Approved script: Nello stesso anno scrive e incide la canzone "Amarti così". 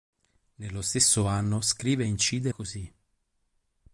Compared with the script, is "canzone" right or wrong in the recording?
wrong